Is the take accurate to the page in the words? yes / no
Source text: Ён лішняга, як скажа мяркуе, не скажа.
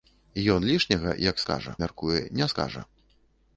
yes